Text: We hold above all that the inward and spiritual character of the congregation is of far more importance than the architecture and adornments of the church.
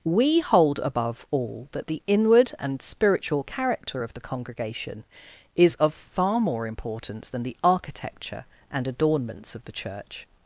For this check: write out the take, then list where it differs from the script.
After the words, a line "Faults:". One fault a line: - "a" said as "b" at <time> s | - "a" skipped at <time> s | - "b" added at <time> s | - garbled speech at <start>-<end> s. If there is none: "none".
We hold above all that the inward and spiritual character of the congregation is of far more importance than the architecture and adornments of the church.
Faults:
none